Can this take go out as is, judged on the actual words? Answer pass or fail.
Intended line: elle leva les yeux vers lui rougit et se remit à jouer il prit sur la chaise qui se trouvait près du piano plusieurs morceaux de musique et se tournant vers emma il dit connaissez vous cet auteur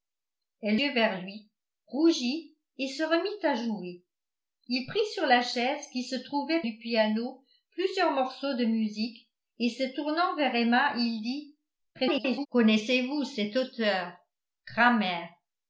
fail